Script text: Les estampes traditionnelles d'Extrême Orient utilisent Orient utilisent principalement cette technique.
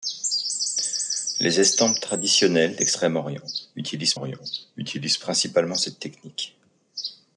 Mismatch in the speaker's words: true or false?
false